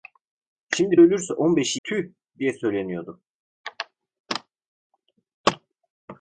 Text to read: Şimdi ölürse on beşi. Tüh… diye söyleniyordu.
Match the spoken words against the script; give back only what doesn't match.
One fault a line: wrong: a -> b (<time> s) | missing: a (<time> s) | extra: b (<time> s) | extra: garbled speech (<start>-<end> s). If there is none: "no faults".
no faults